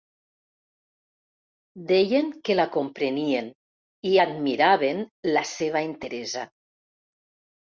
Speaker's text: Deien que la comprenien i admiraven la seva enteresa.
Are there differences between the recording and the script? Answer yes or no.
no